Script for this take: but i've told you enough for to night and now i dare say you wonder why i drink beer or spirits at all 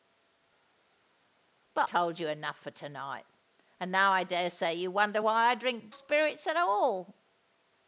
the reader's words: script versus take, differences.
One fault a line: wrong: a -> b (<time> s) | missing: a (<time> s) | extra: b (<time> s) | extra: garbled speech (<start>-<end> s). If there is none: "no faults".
missing: i've (1.9 s)
missing: beer or (5.9 s)